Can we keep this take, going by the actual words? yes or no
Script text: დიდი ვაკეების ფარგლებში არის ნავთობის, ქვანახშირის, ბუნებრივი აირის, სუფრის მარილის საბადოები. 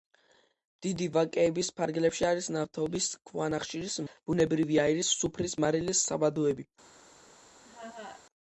yes